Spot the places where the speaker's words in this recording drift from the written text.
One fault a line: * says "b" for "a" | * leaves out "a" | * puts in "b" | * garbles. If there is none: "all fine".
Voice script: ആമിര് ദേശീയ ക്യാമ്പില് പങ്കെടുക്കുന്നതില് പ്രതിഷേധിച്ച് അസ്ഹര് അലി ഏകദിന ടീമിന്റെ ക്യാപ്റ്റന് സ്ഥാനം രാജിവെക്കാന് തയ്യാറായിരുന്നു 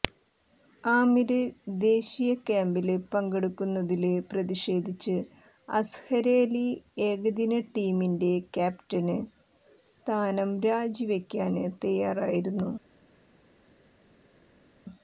all fine